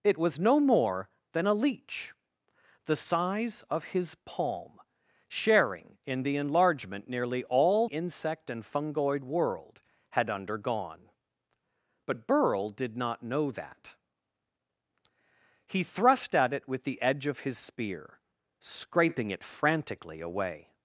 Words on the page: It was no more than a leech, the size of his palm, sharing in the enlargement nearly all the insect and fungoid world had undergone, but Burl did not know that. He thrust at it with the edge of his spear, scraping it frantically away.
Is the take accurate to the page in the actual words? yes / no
no